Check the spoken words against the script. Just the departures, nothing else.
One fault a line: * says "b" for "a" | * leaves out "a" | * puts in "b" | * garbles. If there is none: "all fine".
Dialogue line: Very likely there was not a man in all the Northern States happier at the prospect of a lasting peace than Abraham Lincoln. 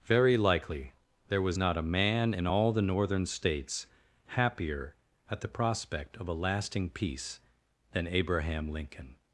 all fine